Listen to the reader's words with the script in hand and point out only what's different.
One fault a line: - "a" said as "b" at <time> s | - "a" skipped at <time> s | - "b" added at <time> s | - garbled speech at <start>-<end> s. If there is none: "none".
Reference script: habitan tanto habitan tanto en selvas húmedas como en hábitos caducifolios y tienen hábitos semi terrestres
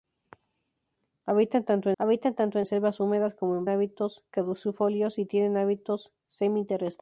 none